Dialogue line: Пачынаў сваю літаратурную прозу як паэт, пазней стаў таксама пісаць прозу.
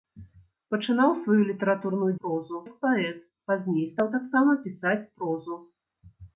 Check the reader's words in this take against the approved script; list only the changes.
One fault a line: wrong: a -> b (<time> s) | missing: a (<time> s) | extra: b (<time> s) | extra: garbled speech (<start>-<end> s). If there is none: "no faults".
no faults